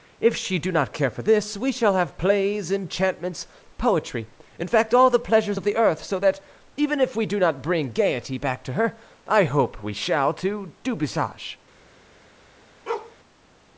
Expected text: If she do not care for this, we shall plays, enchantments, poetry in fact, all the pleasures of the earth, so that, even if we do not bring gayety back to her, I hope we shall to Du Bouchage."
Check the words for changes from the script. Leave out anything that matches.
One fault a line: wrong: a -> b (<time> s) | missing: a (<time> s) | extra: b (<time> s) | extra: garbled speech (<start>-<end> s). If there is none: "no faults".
extra: have (1.9 s)